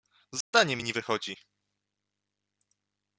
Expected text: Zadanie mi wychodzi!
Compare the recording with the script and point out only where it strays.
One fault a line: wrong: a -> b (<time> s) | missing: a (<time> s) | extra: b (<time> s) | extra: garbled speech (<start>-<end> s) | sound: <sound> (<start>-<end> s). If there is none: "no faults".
sound: dropout (0.4-0.5 s)
extra: nie (0.8 s)